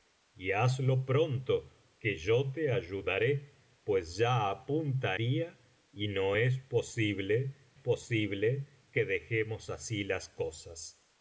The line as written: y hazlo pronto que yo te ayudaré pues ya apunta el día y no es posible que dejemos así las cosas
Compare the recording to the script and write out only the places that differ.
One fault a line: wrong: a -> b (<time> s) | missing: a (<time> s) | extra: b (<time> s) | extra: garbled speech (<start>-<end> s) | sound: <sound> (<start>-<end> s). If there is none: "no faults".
missing: el (5.2 s)
extra: posible (7.7 s)